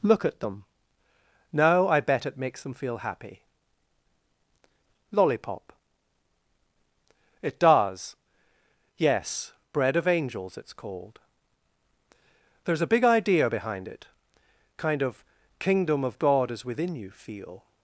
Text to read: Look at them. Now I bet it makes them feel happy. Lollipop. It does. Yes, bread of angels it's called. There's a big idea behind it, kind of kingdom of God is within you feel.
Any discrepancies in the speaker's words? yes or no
no